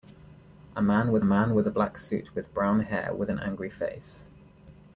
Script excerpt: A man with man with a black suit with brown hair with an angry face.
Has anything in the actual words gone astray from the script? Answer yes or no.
no